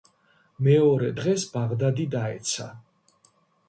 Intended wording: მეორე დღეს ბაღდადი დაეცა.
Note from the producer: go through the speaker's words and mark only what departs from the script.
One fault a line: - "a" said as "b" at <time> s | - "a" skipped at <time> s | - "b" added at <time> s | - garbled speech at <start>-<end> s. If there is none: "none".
none